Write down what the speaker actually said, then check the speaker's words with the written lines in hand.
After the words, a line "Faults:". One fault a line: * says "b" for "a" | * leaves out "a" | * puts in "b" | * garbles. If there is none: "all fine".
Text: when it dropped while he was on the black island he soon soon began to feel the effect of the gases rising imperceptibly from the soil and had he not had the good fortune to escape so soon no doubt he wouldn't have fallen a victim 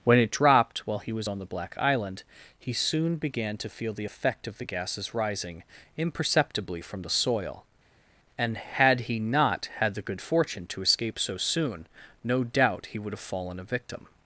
when it dropped while he was on the black island he soon began to feel the effect of the gases rising imperceptibly from the soil and had he not had the good fortune to escape so soon no doubt he would have fallen a victim
Faults:
* leaves out "soon"
* says "would" for "wouldn't"